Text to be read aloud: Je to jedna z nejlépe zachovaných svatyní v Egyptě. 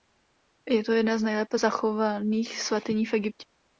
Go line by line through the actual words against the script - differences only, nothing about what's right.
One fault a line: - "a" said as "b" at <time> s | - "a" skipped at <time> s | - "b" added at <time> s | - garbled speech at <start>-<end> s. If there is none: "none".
none